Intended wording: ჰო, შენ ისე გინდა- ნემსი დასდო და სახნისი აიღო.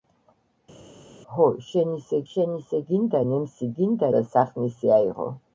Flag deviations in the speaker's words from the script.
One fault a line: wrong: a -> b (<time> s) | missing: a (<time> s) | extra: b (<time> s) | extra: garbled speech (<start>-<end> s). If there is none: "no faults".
extra: შენ ისე (2.3 s)
wrong: დასდო -> გინდა (3.8 s)